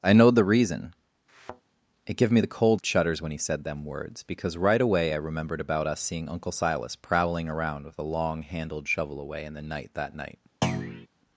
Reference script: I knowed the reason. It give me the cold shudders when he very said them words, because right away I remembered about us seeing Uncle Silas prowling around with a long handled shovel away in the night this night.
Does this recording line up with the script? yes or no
no